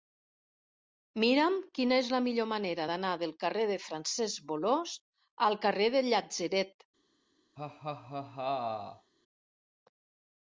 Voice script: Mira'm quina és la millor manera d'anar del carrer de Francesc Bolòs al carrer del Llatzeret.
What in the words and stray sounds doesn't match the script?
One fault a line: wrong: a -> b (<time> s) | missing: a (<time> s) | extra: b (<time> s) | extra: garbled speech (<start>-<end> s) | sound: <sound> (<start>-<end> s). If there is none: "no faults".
sound: laugh (7.6-9.1 s)